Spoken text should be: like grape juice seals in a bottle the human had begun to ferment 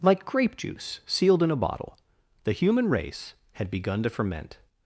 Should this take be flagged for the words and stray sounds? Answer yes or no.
yes